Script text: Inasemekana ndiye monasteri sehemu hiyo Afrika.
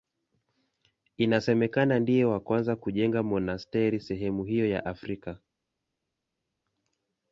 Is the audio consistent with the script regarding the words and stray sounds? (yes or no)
no